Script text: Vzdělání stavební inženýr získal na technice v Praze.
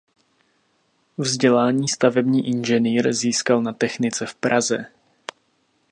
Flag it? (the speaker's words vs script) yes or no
no